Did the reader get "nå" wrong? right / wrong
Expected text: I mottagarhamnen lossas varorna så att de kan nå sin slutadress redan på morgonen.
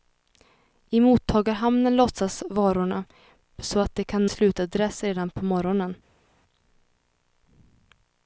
wrong